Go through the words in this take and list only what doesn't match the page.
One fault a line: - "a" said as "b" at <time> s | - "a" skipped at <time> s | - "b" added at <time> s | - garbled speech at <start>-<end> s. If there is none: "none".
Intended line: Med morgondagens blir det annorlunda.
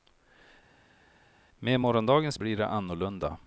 none